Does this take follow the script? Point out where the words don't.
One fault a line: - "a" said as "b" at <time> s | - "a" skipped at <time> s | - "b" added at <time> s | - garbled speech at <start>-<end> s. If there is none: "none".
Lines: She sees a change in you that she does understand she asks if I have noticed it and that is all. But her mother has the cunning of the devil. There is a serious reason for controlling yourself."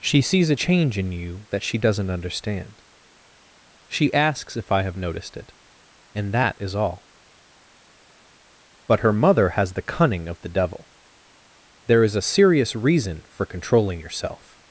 - "does" said as "doesn't" at 1.8 s